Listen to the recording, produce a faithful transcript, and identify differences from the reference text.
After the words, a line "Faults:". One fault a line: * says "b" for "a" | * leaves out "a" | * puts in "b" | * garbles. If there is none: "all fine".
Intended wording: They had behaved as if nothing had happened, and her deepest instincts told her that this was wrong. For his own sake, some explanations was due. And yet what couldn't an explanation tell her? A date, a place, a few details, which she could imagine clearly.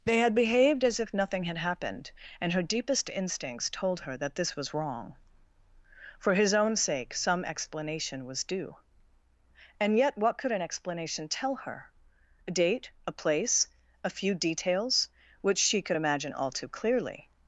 They had behaved as if nothing had happened, and her deepest instincts told her that this was wrong. For his own sake, some explanation was due. And yet what could an explanation tell her? A date, a place, a few details, which she could imagine all too clearly.
Faults:
* says "explanation" for "explanations"
* says "could" for "couldn't"
* puts in "all too"